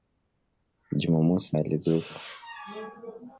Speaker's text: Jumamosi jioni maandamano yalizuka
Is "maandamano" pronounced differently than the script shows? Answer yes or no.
yes